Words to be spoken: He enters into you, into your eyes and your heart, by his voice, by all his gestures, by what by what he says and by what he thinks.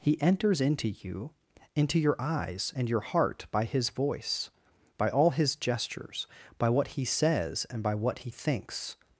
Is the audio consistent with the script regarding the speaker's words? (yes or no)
no